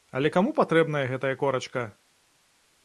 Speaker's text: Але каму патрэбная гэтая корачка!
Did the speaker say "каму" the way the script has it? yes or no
yes